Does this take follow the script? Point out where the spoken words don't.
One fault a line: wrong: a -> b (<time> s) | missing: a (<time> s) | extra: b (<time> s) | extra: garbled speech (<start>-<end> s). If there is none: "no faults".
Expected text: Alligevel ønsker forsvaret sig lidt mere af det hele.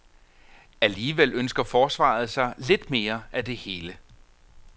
no faults